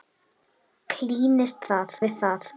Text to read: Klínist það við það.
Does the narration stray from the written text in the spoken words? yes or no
no